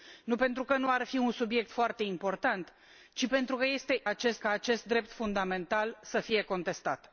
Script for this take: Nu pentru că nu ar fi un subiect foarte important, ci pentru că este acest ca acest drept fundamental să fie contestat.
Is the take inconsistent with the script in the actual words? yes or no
no